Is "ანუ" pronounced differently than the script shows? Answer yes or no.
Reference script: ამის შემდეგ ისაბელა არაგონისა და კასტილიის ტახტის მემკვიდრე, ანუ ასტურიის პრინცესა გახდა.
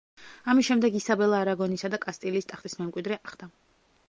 yes